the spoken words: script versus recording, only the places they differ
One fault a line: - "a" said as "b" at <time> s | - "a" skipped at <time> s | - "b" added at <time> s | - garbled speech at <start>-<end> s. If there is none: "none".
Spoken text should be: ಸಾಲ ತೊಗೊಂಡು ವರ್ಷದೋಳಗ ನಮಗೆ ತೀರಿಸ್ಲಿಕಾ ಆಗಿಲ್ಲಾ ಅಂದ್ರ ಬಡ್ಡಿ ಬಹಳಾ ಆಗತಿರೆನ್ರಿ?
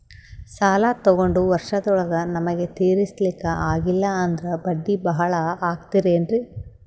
none